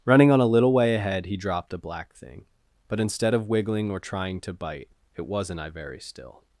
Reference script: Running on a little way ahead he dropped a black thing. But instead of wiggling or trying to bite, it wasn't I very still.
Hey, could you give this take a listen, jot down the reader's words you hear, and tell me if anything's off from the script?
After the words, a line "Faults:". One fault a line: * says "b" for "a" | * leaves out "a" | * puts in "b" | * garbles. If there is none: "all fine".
Running on a little way ahead he dropped a black thing. But instead of wiggling or trying to bite, it wasn't I very still.
Faults:
all fine